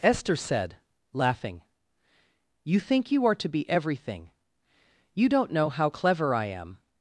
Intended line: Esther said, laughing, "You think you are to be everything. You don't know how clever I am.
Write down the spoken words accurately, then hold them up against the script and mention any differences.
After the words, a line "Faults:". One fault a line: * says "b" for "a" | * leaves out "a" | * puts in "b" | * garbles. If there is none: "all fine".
Esther said, laughing, "You think you are to be everything. You don't know how clever I am.
Faults:
all fine